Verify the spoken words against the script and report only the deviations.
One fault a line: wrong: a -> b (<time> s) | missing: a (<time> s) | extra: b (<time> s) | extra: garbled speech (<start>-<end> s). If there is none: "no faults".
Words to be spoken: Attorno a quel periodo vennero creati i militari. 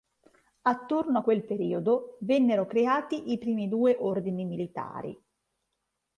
extra: primi due ordini (3.4 s)